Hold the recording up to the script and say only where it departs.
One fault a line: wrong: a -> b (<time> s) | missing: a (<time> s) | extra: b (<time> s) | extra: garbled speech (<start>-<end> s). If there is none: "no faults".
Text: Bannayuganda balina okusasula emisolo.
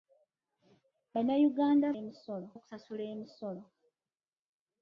wrong: balina -> emisolo (2.0 s)